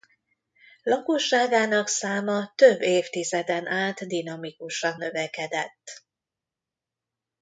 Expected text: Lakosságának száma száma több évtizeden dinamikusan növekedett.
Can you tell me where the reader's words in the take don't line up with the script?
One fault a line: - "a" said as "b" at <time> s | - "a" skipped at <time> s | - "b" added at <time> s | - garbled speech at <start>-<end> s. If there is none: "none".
- "száma" skipped at 2.5 s
- "át" added at 3.7 s